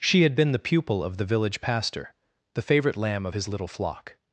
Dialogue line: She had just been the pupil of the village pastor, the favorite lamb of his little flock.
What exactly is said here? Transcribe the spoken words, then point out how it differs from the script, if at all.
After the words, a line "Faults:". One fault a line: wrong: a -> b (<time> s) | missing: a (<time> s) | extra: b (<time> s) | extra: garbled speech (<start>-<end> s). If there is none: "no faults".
She had been the pupil of the village pastor, the favorite lamb of his little flock.
Faults:
missing: just (0.3 s)